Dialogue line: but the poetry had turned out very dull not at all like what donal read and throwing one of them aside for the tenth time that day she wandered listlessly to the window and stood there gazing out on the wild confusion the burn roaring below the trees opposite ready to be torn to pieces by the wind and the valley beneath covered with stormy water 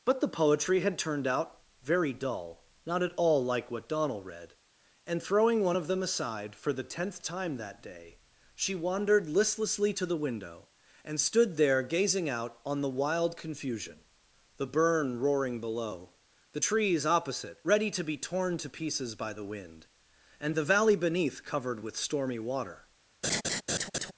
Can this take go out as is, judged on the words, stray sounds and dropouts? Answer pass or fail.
fail